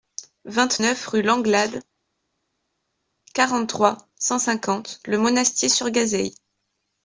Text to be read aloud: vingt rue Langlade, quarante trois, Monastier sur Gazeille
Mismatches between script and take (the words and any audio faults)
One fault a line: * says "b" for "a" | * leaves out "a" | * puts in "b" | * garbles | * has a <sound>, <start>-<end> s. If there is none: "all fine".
* puts in "neuf"
* puts in "cent cinquante Le"